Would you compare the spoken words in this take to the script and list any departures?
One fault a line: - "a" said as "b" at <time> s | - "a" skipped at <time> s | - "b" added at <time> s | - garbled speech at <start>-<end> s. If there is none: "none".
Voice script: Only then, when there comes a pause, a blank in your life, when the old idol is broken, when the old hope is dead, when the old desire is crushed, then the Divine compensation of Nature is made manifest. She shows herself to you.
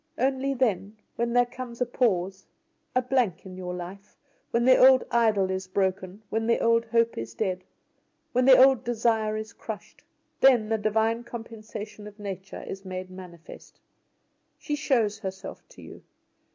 none